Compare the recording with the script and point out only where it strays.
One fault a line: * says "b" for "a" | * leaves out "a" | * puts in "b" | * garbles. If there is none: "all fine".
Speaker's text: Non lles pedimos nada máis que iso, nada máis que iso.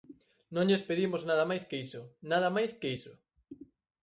all fine